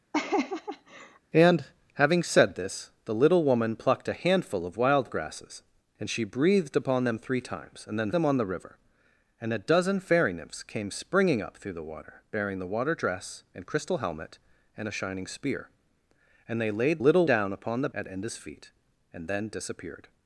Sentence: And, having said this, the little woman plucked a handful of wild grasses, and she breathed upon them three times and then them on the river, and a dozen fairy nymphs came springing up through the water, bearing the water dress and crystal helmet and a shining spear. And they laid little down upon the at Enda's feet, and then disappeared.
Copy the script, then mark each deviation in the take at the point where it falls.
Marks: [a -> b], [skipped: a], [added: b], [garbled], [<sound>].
[laugh] And, having said this, the little woman plucked a handful of wild grasses, and she breathed upon them three times and then them on the river, and a dozen fairy nymphs came springing up through the water, bearing the water dress and crystal helmet and a shining spear. And they laid little down upon the at Enda's feet, and then disappeared.